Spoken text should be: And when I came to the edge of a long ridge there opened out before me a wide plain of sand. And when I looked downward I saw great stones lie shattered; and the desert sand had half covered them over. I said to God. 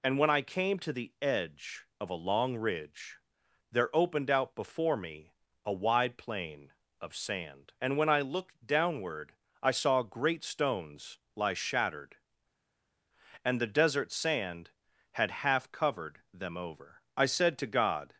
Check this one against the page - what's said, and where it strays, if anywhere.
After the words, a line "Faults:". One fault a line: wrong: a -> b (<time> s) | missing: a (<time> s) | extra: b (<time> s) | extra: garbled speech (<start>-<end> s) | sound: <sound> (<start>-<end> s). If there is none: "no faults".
And when I came to the edge of a long ridge there opened out before me a wide plain of sand. And when I looked downward I saw great stones lie shattered; and the desert sand had half covered them over. I said to God.
Faults:
no faults